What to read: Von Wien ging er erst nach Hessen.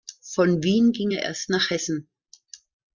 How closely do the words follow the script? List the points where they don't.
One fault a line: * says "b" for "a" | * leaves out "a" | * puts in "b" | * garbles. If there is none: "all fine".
all fine